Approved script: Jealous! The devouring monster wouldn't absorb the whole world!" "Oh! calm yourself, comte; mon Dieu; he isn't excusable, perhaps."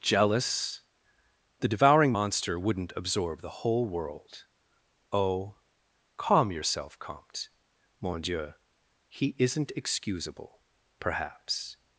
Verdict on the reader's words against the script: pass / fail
pass